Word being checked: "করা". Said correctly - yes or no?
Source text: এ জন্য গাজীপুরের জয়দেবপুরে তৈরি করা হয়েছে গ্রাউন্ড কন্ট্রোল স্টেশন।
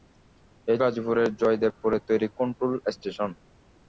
no